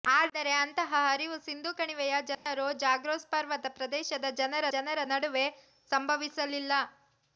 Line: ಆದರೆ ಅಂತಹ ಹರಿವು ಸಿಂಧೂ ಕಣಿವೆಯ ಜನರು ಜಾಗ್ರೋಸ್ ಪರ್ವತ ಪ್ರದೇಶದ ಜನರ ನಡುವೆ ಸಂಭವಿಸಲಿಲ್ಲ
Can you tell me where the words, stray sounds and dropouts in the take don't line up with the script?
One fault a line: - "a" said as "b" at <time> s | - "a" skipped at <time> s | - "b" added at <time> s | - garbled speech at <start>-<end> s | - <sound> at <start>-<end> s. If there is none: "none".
- dropout at 2.3-2.5 s
- "ಜನರ" added at 4.7 s